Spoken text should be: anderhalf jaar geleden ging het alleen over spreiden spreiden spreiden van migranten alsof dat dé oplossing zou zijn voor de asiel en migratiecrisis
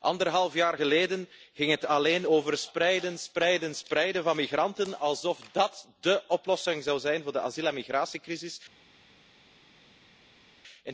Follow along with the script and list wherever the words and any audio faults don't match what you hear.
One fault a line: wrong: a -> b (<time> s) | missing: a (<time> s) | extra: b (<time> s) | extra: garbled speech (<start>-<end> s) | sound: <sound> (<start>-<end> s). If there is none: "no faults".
no faults